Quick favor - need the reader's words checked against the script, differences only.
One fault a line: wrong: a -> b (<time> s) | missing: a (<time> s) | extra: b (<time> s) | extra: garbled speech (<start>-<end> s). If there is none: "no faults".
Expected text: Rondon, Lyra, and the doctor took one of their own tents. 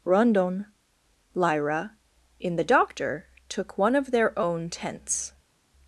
wrong: and -> in (2.4 s)